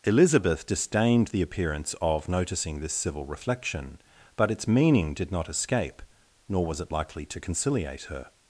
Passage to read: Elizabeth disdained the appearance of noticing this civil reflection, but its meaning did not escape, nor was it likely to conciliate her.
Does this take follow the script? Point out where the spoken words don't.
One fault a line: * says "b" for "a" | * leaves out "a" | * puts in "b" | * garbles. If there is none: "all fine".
all fine